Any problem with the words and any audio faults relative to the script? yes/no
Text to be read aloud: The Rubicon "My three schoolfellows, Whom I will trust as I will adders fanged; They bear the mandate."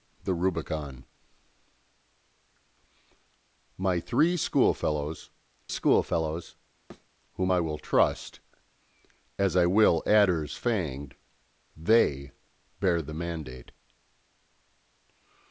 yes